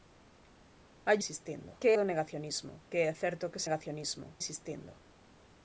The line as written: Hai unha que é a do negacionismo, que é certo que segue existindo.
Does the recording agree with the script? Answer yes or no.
no